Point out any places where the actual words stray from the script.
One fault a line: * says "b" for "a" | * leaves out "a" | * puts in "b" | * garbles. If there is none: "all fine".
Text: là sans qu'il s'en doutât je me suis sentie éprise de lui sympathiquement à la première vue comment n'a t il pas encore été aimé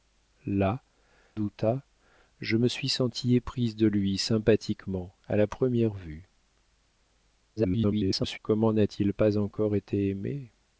* leaves out "sans qu'il s'en"
* garbles